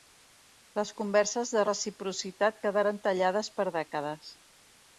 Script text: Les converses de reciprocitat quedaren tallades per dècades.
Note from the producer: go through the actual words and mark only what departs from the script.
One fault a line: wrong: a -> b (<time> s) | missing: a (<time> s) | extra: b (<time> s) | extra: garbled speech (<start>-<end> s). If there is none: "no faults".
no faults